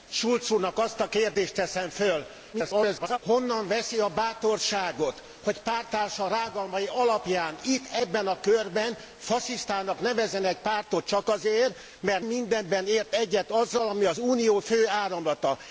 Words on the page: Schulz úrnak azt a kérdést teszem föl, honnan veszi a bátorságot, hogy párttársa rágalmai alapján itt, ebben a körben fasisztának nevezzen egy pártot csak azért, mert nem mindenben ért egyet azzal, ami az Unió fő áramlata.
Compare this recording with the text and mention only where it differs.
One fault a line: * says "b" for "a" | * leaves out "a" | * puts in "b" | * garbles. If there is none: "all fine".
* garbles
* leaves out "nem"